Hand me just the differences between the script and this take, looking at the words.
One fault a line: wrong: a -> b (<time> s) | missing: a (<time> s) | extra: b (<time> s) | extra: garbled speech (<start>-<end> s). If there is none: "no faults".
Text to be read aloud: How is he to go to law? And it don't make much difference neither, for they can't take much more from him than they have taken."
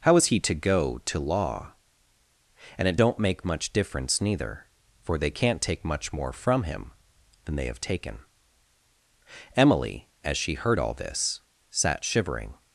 extra: Emily as she heard all this sat shivering (9.6 s)